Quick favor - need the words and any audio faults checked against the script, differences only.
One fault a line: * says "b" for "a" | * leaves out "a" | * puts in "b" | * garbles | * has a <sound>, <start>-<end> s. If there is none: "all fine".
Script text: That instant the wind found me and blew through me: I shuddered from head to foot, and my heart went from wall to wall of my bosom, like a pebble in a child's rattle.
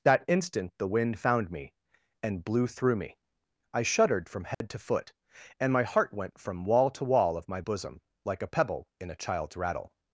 * has a dropout, 4.5-4.6 s